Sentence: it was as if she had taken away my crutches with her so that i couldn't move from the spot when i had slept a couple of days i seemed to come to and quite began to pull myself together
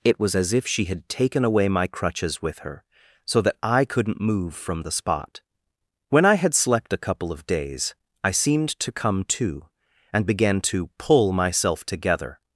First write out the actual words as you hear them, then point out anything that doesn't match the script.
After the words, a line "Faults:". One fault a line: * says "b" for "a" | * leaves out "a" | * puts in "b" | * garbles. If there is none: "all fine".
it was as if she had taken away my crutches with her so that i couldn't move from the spot when i had slept a couple of days i seemed to come to and began to pull myself together
Faults:
* leaves out "quite"